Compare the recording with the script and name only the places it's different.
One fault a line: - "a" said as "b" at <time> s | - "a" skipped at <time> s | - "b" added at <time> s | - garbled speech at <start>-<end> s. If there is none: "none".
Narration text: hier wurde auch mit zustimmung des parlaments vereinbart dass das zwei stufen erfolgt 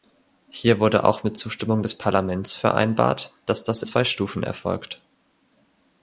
none